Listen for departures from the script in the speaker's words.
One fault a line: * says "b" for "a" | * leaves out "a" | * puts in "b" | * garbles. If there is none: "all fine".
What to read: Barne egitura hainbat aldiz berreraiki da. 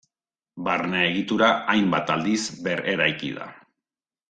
all fine